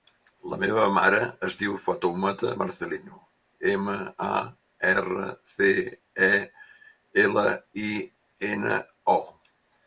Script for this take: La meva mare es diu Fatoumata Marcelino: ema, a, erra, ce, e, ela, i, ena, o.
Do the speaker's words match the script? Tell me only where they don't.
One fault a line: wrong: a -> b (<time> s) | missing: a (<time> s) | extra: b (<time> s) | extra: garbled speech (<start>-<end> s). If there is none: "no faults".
no faults